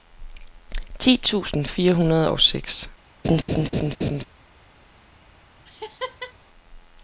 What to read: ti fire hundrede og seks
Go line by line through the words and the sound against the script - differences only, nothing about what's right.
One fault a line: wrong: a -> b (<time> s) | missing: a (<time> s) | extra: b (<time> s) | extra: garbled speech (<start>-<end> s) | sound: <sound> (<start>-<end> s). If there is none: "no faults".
extra: tusind (1.2 s)
sound: laugh (3.2-4.2 s)
sound: laugh (5.7-6.3 s)